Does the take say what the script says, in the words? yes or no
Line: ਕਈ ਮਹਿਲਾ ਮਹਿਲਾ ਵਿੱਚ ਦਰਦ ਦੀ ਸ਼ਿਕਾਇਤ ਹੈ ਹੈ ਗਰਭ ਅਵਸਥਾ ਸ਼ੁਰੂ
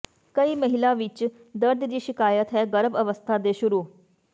no